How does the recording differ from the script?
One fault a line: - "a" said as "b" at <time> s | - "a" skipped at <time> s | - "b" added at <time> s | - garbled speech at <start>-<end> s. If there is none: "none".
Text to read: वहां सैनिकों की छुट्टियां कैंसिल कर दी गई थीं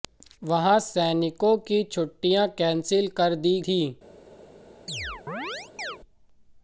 - "गई" skipped at 3.6 s